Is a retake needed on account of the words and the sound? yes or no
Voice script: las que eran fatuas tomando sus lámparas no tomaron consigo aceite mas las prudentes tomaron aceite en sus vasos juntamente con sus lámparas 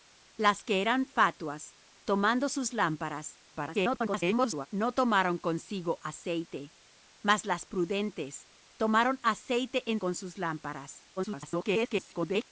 yes